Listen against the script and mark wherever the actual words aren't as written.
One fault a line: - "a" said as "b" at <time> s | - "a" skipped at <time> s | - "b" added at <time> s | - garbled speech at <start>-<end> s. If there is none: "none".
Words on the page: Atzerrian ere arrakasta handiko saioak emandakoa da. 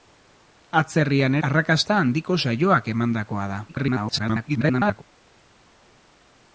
- "ere" skipped at 1.4 s
- garbled speech at 3.7-5.0 s